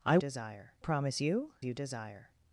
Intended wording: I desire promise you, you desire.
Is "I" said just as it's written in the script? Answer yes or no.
yes